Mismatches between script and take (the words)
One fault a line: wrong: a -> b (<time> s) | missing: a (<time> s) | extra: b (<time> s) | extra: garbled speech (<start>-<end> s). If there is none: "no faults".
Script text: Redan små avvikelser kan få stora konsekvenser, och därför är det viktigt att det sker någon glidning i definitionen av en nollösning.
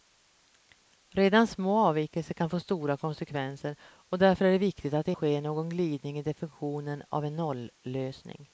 no faults